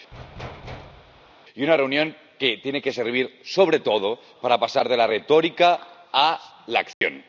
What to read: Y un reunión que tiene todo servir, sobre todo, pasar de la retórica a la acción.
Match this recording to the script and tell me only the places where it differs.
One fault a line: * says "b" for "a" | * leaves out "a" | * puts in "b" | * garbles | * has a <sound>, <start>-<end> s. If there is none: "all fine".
* has a thud, 0.1-1.3 s
* says "una" for "un"
* says "que" for "todo"
* puts in "para"
* has a dropout, 6.9-7.0 s